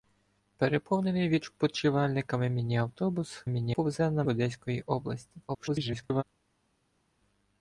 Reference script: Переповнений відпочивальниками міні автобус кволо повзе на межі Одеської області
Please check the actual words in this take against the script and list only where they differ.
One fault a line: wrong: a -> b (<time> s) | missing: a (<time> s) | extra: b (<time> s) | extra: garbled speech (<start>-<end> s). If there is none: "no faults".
wrong: кволо -> міні (3.5 s)
missing: межі (4.2 s)
extra: garbled speech (5.5-6.2 s)